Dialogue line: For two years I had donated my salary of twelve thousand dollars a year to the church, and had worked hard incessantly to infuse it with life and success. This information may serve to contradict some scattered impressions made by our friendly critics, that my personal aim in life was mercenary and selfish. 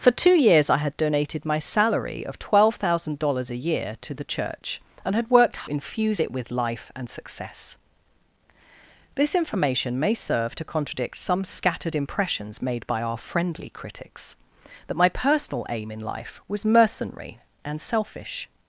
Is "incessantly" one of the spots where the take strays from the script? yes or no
yes